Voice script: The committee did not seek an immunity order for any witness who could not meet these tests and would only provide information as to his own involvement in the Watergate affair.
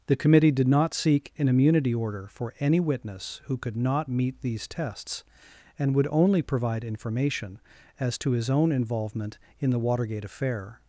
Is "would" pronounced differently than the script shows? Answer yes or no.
no